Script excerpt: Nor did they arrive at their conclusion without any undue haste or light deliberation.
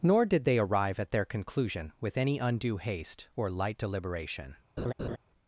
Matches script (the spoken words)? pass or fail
fail